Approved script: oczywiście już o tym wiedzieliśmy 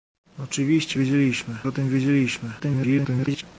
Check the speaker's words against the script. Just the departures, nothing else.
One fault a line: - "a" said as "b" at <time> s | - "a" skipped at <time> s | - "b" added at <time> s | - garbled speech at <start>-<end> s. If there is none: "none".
- "już" said as "wiedzieliśmy" at 0.9 s
- garbled speech at 2.6-3.4 s